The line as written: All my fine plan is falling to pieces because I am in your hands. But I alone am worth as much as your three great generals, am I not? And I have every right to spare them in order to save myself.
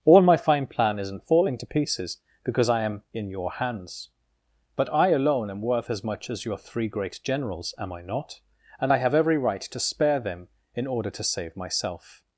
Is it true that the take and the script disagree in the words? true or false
true